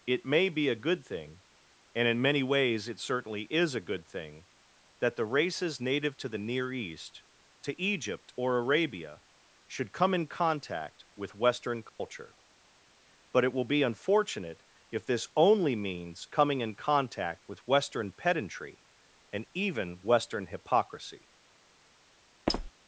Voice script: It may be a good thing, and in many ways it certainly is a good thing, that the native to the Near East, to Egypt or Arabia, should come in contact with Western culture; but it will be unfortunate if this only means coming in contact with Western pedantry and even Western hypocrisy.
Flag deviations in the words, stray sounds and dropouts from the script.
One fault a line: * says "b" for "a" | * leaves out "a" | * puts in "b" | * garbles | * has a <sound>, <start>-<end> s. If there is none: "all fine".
* puts in "races"
* has a dropout, 11.9-12.0 s
* has a squeak, 22.5-22.7 s